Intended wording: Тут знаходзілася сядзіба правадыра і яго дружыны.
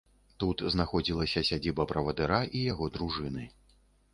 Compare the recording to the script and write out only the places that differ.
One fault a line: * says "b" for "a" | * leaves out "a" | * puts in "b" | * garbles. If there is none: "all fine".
all fine